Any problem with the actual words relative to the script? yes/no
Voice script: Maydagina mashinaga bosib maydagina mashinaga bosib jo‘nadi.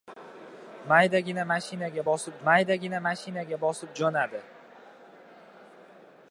no